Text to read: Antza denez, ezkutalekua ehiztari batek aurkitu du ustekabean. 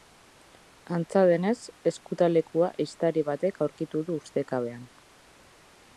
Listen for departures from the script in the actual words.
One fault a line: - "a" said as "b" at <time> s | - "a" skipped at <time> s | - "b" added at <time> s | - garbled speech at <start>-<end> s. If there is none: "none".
none